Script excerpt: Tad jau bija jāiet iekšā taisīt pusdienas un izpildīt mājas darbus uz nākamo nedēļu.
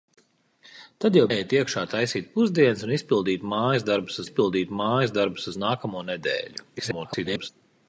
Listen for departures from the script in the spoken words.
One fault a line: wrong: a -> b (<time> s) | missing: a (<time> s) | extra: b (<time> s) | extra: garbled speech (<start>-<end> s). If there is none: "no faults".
missing: bija (1.2 s)
extra: izpildīt mājas darbus (4.2 s)
extra: garbled speech (6.8-7.5 s)